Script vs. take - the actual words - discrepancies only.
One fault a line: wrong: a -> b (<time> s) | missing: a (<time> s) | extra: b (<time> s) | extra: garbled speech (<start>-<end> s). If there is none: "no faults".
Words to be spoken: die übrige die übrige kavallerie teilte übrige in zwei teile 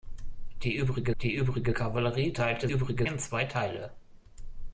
no faults